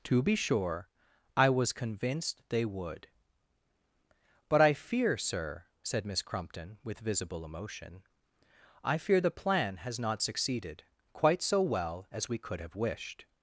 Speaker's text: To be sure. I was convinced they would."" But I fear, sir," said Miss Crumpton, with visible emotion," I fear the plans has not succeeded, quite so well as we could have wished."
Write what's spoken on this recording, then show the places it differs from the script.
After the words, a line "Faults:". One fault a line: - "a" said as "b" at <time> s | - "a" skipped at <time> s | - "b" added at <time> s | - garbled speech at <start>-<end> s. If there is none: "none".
To be sure. I was convinced they would."" But I fear, sir," said Miss Crumpton, with visible emotion," I fear the plan has not succeeded, quite so well as we could have wished."
Faults:
- "plans" said as "plan" at 9.3 s